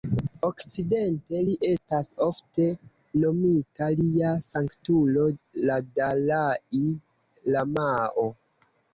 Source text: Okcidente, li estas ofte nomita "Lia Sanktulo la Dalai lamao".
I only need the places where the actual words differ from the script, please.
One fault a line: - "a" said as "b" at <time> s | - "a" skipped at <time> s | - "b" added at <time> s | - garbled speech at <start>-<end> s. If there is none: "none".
none